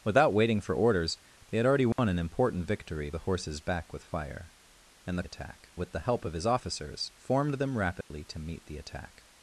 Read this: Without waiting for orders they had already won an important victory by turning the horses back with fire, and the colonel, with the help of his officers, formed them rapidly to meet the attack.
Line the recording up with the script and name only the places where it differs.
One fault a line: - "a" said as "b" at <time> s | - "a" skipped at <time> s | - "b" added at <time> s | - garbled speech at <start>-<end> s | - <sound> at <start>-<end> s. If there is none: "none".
- dropout at 1.9-2.0 s
- "by turning" skipped at 3.1 s
- "colonel" said as "attack" at 5.2 s
- dropout at 8.0-8.1 s